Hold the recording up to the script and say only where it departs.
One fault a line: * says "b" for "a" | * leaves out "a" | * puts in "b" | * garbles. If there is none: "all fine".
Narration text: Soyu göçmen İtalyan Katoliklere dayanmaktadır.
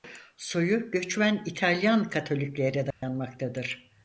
all fine